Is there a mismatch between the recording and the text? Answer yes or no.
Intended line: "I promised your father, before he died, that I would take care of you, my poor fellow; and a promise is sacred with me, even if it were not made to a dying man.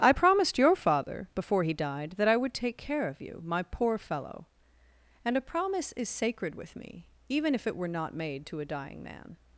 no